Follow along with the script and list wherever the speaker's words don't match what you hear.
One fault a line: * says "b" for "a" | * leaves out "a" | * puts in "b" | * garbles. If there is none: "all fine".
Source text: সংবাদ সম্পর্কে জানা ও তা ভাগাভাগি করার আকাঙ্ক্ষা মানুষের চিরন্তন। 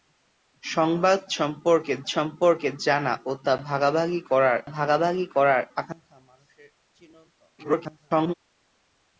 * puts in "সম্পর্কে"
* puts in "ভাগাভাগি করার"
* garbles